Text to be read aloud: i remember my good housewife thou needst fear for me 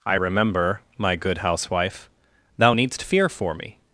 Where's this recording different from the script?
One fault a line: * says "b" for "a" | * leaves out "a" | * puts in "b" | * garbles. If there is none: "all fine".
all fine